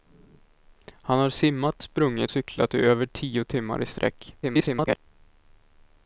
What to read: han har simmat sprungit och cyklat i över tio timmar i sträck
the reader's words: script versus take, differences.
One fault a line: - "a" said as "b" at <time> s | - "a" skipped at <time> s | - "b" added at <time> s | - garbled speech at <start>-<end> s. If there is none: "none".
- "och" skipped at 2.3 s
- garbled speech at 4.4-5.0 s